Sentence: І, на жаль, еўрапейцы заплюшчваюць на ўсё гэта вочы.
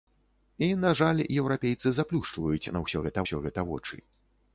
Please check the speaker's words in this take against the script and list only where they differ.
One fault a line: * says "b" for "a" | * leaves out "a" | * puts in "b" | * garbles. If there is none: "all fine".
* puts in "ўсё гэта"